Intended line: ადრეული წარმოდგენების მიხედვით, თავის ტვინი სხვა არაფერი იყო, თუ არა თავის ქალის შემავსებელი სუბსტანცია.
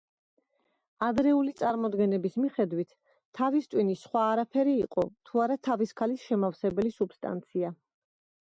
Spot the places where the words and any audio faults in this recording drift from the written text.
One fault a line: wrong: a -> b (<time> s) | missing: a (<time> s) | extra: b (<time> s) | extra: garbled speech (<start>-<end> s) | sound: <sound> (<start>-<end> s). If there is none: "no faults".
no faults